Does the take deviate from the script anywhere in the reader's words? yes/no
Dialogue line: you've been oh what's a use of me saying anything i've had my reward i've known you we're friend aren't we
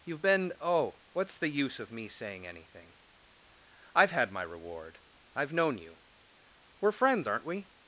yes